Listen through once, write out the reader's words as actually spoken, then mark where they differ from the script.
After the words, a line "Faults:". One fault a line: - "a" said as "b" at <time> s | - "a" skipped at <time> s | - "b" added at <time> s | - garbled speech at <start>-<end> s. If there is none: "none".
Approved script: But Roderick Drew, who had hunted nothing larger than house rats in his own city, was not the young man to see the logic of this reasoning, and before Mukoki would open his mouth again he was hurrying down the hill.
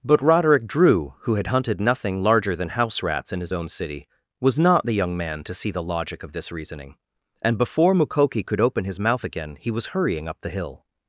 But Roderick Drew, who had hunted nothing larger than house rats in his own city, was not the young man to see the logic of this reasoning, and before Mukoki could open his mouth again he was hurrying up the hill.
Faults:
- "would" said as "could" at 8.5 s
- "down" said as "up" at 10.3 s